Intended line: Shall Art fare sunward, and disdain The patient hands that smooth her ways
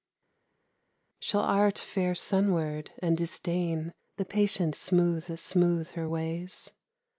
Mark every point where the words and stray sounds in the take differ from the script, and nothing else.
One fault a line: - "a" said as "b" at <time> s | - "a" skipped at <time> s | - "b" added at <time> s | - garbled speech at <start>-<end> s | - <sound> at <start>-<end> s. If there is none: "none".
- "hands" said as "smooth" at 4.7 s